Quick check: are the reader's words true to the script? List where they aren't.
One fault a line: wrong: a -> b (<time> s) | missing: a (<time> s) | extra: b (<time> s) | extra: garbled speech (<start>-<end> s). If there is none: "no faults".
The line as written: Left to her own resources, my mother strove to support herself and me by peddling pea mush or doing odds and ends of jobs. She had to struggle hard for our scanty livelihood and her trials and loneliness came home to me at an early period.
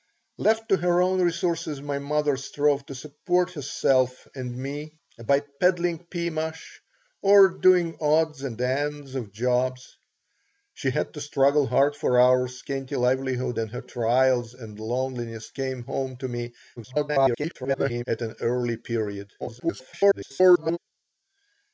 extra: garbled speech (16.8-18.0 s)
extra: garbled speech (19.4-20.8 s)